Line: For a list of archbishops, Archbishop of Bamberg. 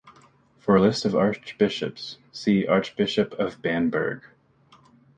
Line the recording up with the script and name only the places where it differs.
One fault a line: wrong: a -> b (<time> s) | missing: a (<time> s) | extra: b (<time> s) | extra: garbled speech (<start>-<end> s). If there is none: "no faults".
extra: see (2.3 s)